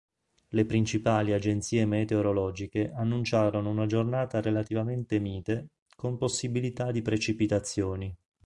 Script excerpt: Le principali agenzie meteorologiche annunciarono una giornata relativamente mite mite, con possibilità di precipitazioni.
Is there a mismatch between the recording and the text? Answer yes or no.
yes